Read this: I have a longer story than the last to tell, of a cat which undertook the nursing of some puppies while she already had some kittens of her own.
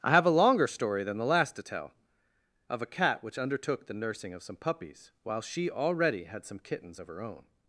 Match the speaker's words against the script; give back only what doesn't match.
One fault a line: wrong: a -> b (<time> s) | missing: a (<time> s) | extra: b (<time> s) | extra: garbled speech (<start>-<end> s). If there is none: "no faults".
no faults